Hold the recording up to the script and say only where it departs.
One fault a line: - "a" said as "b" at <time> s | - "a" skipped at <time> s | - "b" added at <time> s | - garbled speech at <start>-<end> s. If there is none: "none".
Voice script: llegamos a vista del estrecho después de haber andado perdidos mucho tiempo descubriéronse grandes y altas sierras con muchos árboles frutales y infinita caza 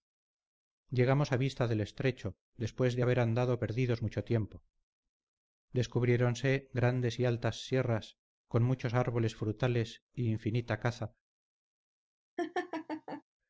none